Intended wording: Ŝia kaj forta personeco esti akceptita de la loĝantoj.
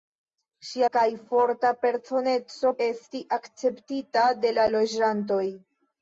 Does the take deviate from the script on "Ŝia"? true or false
false